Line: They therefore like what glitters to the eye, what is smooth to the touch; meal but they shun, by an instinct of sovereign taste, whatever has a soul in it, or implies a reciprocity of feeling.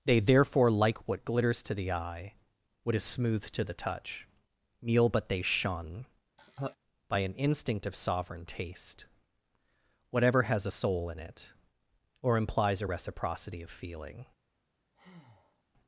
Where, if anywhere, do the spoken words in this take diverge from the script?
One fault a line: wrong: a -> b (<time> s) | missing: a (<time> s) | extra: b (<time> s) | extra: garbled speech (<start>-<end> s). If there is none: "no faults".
no faults